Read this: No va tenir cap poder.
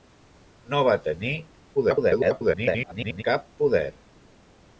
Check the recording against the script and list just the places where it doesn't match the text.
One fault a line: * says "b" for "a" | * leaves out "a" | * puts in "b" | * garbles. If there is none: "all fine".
* garbles